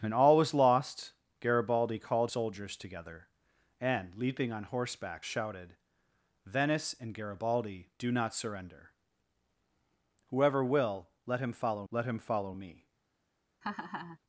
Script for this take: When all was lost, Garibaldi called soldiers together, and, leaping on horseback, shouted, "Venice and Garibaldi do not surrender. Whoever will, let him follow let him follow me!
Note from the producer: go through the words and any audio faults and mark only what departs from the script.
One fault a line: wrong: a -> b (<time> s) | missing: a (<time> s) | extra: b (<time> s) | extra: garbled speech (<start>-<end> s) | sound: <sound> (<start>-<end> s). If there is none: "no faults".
sound: laugh (13.6-14.2 s)